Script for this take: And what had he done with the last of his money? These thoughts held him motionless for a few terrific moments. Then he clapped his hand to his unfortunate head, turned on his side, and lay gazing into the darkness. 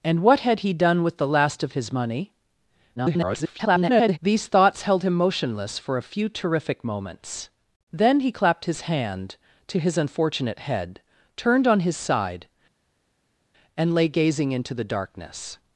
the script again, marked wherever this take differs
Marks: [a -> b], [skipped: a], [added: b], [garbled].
And what had he done with the last of his money? [garbled] These thoughts held him motionless for a few terrific moments. Then he clapped his hand to his unfortunate head, turned on his side, and lay gazing into the darkness.